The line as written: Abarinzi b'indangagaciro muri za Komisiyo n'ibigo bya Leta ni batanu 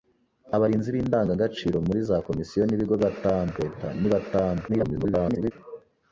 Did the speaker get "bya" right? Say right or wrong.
wrong